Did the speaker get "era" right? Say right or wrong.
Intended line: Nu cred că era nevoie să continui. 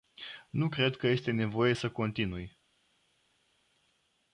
wrong